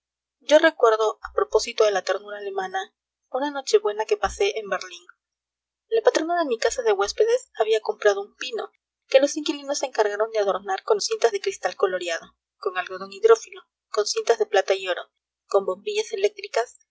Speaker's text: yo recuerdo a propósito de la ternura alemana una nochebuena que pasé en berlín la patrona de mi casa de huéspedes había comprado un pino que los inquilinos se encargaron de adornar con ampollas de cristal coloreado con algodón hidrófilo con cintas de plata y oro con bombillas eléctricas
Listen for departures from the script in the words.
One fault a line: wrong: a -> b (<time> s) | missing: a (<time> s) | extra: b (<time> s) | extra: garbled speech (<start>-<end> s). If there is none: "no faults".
wrong: ampollas -> cintas (11.0 s)